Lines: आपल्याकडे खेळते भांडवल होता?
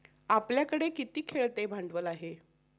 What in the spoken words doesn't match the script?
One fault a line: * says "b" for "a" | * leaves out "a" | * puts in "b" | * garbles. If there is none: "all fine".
* puts in "किती"
* says "आहे" for "होता"